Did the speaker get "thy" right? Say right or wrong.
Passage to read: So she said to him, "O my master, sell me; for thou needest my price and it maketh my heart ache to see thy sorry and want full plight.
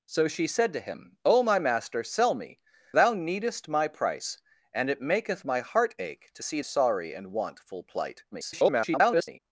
wrong